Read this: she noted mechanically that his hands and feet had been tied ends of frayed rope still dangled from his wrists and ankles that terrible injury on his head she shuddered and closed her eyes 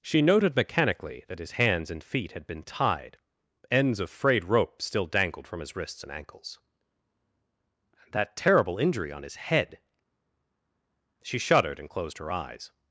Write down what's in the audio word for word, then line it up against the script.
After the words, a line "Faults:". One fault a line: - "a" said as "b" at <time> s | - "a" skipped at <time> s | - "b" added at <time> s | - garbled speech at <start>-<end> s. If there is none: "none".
she noted mechanically that his hands and feet had been tied ends of frayed rope still dangled from his wrists and ankles that terrible injury on his head she shuddered and closed her eyes
Faults:
none